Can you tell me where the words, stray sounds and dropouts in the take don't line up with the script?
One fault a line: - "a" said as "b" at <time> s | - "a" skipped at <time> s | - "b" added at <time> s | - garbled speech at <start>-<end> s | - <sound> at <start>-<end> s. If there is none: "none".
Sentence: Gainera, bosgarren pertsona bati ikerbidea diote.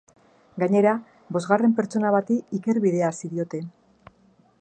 - "hasi" added at 3.1 s